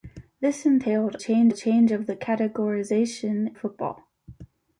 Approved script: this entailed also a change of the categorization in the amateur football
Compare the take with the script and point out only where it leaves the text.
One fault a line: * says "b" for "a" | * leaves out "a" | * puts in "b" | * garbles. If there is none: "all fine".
* says "change" for "also"
* leaves out "in the amateur"